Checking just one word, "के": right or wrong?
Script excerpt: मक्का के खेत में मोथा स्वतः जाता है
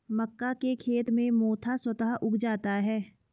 right